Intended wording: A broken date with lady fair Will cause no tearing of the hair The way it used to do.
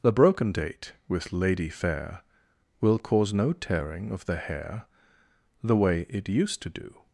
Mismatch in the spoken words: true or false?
true